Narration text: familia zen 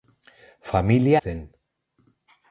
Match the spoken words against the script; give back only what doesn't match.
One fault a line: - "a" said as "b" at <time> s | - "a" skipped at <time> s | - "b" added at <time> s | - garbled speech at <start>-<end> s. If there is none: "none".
none